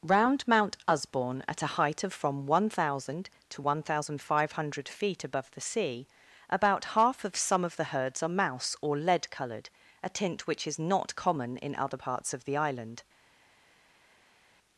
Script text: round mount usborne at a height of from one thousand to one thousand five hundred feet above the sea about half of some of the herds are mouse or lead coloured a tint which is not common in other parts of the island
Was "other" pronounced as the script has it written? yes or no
yes